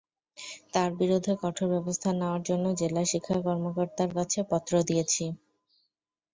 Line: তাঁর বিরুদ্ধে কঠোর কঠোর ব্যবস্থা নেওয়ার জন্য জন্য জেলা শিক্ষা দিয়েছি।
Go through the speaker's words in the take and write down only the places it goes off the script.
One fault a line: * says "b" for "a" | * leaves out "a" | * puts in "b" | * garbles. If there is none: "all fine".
* leaves out "কঠোর"
* leaves out "জন্য"
* puts in "কর্মকর্তার কাছে পত্র"